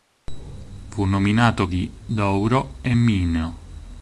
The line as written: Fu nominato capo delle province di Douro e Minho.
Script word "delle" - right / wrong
wrong